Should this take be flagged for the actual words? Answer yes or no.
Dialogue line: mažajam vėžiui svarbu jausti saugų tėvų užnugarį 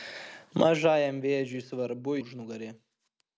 yes